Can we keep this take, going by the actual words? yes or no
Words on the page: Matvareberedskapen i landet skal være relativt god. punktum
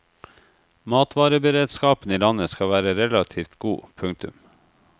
yes